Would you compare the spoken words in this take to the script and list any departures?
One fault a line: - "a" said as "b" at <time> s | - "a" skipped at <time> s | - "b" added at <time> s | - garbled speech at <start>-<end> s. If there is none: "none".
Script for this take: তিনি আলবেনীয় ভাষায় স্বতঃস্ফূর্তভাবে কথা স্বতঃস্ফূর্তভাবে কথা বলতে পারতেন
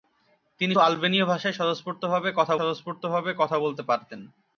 none